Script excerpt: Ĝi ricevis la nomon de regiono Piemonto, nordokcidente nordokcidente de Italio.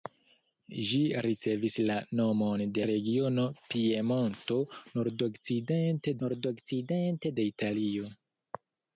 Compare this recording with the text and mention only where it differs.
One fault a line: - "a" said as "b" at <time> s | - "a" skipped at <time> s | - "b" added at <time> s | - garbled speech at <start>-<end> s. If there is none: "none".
none